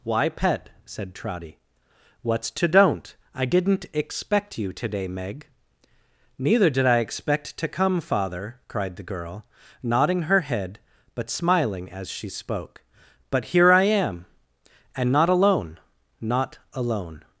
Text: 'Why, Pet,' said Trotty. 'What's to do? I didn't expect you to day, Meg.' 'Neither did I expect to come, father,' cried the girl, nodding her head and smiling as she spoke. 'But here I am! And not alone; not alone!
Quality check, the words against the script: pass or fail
fail